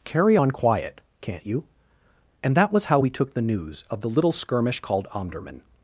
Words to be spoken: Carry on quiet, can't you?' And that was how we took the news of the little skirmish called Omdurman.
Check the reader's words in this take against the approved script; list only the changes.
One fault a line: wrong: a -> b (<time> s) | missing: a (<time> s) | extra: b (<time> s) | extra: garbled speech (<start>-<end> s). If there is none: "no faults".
no faults